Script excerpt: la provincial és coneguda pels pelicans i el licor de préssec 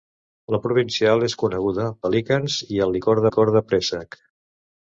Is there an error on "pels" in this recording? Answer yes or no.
yes